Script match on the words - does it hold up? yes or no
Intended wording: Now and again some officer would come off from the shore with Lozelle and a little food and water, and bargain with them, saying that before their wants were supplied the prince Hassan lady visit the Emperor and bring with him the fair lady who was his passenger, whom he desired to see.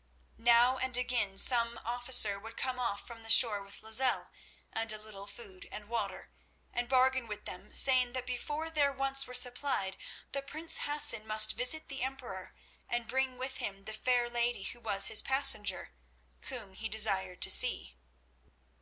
no